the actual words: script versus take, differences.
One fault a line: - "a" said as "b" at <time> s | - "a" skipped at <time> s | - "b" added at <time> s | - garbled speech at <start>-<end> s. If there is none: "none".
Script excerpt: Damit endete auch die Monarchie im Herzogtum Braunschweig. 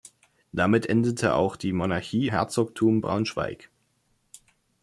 - "im" skipped at 2.3 s